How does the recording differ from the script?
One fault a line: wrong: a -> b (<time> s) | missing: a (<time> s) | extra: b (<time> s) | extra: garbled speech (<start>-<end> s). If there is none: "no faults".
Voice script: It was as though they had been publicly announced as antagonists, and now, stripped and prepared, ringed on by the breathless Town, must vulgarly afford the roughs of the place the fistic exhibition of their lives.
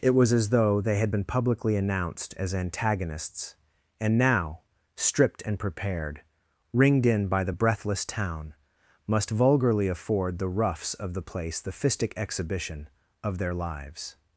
wrong: on -> in (7.1 s)